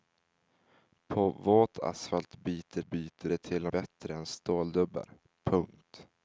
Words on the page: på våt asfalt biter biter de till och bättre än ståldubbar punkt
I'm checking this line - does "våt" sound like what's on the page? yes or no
yes